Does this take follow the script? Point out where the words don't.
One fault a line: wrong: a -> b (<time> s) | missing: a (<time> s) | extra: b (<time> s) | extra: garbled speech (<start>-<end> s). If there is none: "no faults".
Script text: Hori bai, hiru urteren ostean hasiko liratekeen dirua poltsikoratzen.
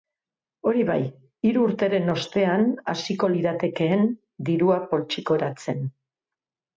no faults